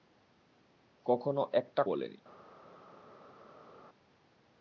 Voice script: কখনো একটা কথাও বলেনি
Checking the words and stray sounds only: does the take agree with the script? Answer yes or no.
no